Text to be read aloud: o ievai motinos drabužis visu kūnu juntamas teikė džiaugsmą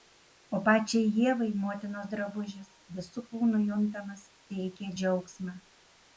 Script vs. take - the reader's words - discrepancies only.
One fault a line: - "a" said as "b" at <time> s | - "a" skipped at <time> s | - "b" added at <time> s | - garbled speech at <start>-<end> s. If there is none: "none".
- "pačiai" added at 0.7 s